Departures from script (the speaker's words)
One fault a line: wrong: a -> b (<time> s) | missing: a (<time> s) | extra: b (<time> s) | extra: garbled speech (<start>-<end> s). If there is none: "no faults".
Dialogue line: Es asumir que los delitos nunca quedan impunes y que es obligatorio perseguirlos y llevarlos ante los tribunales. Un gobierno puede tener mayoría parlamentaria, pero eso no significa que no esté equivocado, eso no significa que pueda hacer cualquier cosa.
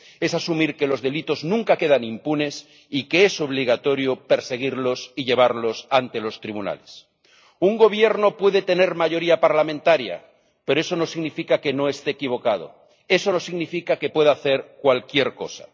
no faults